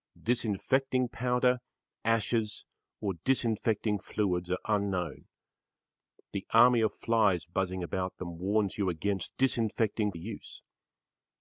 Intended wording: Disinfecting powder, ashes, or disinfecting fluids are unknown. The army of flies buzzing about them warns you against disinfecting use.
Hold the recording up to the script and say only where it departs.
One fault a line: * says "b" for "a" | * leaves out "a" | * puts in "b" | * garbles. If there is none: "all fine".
all fine